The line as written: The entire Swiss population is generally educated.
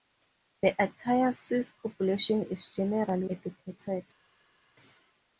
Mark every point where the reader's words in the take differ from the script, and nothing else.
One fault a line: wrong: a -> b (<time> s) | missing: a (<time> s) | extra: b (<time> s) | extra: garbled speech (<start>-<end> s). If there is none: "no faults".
no faults